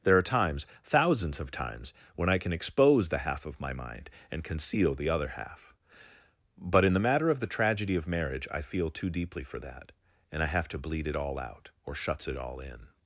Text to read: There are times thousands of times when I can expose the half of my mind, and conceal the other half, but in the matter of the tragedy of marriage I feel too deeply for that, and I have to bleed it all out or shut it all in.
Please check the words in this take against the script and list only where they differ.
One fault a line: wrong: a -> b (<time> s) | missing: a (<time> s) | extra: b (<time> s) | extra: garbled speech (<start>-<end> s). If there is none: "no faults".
wrong: shut -> shuts (11.9 s)